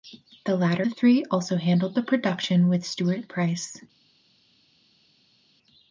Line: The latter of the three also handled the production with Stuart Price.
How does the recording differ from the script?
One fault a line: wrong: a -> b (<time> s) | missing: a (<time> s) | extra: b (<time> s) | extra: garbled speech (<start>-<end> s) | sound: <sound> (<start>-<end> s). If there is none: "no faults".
missing: of (0.9 s)